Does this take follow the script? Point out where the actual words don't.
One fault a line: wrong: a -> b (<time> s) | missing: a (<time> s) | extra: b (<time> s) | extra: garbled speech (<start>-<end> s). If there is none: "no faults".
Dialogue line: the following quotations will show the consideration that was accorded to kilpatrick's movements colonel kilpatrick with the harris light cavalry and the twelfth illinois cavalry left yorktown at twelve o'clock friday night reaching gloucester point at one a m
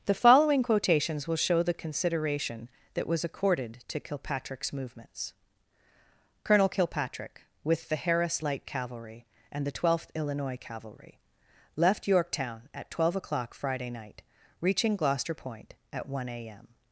no faults